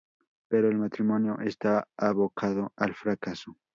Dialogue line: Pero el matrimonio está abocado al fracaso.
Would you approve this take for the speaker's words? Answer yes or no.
yes